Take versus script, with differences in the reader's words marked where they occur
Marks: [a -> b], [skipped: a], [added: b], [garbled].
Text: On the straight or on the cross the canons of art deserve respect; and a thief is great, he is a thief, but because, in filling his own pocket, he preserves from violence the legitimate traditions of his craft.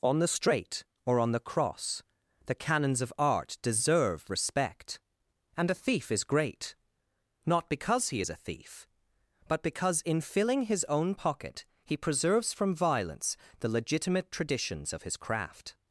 On the straight or on the cross the canons of art deserve respect; and a thief is great, [added: not because] he is a thief, but because, in filling his own pocket, he preserves from violence the legitimate traditions of his craft.